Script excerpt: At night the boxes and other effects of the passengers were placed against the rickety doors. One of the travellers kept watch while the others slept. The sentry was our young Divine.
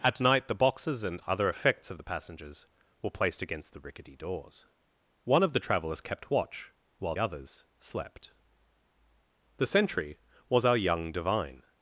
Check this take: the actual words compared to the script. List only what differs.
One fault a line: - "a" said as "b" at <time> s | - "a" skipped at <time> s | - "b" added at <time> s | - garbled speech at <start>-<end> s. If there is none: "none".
- "the" skipped at 7.2 s